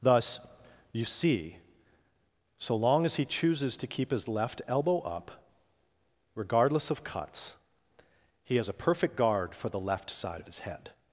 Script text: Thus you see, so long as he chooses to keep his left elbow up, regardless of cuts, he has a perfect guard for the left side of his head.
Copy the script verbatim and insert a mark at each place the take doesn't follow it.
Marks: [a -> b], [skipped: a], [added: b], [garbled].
Thus you see, so long as he chooses to keep his left elbow up, regardless of cuts, he has a perfect guard for the left side of his head.